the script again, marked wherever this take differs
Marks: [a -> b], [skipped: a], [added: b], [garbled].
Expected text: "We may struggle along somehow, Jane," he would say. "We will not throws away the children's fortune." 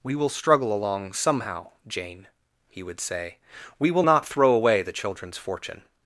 "We [may -> will] struggle along somehow, Jane," he would say. "We will not [throws -> throw] away the children's fortune."